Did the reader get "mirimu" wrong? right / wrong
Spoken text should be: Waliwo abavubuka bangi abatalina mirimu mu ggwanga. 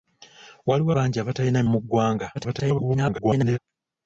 wrong